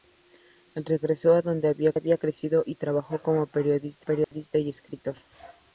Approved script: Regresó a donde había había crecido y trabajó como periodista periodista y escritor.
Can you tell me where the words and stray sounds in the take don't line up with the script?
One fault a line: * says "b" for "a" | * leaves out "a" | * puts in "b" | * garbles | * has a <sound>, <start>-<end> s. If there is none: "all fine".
* has a dropout, 4.2-4.3 s